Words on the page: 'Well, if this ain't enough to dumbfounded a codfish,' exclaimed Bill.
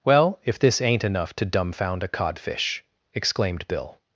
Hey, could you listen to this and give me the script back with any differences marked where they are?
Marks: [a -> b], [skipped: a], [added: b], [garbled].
'Well, if this ain't enough to [dumbfounded -> dumbfound] a codfish,' exclaimed Bill.